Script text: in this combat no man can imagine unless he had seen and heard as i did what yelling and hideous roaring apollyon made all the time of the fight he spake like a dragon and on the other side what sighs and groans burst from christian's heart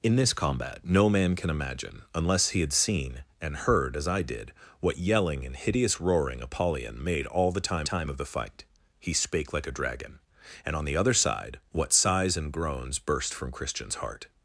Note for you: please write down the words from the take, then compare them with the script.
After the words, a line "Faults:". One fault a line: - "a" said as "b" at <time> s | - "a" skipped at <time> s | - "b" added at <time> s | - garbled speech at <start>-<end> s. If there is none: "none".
in this combat no man can imagine unless he had seen and heard as i did what yelling and hideous roaring apollyon made all the time time of the fight he spake like a dragon and on the other side what sighs and groans burst from christian's heart
Faults:
- "time" added at 7.8 s